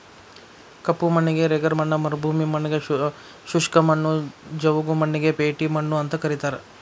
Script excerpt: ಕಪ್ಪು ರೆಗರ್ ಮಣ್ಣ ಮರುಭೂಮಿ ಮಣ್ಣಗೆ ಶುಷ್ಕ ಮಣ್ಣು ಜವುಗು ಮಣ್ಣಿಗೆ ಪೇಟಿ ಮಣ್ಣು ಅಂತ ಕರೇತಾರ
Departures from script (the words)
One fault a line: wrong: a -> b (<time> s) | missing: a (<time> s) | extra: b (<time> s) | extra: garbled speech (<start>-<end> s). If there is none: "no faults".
extra: ಮಣ್ಣಿಗೆ (1.1 s)